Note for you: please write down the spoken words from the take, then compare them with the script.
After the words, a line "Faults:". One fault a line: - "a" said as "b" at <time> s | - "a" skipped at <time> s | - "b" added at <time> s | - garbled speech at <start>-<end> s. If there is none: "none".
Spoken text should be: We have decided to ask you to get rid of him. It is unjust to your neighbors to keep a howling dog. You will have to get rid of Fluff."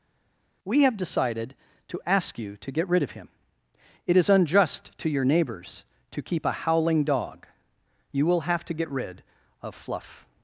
We have decided to ask you to get rid of him. It is unjust to your neighbors to keep a howling dog. You will have to get rid of Fluff."
Faults:
none